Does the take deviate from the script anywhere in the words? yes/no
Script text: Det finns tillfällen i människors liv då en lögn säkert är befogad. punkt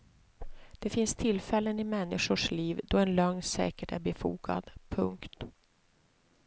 no